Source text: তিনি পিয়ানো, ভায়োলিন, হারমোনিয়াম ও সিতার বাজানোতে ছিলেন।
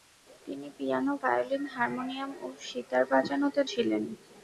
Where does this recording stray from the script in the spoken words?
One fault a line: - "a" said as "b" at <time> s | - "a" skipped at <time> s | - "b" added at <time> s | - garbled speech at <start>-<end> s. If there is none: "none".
none